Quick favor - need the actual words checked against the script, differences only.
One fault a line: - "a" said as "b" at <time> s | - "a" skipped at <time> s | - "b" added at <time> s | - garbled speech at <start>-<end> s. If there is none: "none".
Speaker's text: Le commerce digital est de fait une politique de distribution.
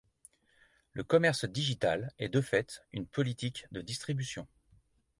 none